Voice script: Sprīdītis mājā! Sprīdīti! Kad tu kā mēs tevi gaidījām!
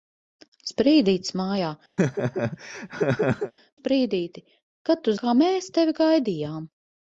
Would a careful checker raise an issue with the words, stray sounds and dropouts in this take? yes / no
yes